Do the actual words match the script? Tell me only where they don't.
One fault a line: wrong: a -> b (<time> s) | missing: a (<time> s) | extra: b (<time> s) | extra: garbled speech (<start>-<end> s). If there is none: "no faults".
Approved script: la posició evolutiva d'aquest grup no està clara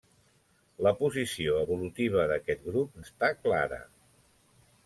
missing: no (3.0 s)